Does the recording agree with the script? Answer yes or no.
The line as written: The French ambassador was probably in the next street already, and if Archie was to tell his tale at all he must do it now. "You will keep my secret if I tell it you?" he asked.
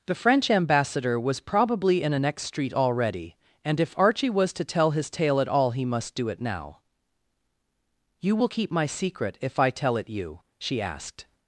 no